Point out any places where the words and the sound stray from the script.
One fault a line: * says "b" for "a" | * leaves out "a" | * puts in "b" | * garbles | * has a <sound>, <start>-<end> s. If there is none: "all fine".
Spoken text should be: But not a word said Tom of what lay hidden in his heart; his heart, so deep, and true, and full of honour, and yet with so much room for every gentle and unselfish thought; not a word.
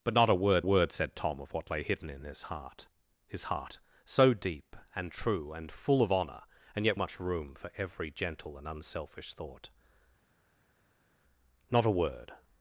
* puts in "word"
* leaves out "with so"